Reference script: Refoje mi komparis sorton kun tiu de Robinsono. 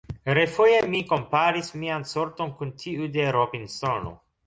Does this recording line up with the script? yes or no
no